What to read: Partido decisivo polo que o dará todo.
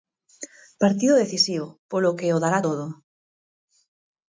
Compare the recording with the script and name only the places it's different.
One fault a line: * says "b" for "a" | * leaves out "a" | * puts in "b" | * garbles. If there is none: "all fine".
all fine